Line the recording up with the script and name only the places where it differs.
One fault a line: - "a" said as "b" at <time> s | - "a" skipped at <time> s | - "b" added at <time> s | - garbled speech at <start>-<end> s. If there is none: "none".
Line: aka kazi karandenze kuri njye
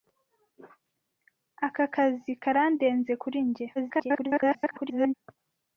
- garbled speech at 3.8-5.1 s